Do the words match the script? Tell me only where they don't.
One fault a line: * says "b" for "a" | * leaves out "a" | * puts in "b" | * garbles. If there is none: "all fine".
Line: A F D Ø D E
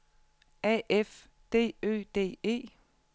all fine